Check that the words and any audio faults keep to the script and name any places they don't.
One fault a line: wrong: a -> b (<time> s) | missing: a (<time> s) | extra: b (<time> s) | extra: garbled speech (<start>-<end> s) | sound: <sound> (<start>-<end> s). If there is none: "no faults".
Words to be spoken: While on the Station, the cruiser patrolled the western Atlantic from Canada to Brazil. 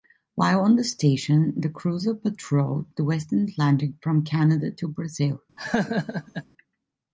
sound: laugh (5.6-6.4 s)